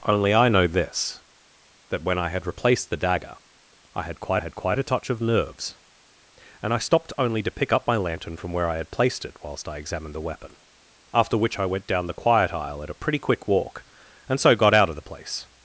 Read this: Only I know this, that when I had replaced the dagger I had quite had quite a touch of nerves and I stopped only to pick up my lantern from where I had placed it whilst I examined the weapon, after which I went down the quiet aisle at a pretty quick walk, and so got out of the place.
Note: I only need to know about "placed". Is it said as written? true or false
true